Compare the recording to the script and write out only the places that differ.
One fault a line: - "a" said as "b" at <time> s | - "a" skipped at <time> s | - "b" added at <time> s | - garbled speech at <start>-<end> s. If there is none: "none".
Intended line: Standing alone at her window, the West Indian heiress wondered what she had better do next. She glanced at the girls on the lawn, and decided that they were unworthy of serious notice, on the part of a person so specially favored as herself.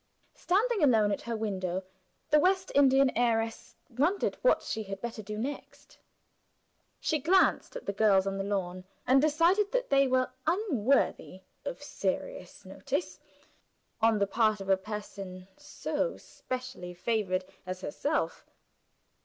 none